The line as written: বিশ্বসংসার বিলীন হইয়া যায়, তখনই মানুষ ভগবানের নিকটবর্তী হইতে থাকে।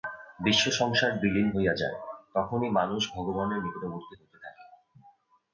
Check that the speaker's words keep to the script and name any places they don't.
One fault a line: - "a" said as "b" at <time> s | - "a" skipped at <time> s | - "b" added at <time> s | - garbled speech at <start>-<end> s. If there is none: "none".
none